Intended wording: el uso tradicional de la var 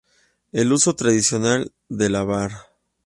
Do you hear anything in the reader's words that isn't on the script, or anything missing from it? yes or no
no